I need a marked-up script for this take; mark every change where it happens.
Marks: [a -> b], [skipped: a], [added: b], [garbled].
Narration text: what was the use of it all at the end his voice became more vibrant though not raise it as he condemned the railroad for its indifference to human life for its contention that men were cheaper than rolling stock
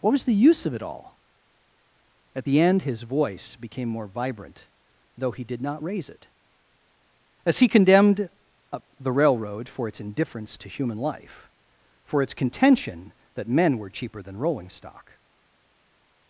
what was the use of it all at the end his voice became more vibrant though [added: he did] not raise it as he condemned the railroad for its indifference to human life for its contention that men were cheaper than rolling stock